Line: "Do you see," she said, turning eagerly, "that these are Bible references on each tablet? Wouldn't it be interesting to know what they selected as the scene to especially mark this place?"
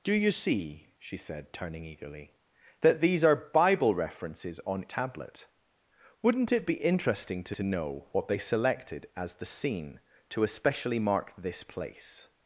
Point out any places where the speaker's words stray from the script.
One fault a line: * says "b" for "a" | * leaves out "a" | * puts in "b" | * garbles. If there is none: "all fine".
* leaves out "each"
* puts in "to"